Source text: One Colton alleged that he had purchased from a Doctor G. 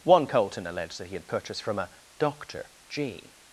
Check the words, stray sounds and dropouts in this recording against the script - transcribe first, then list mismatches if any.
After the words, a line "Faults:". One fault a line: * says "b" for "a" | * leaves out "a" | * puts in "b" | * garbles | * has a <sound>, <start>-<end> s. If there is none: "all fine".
One Colton alleged that he had purchased from a Doctor G.
Faults:
all fine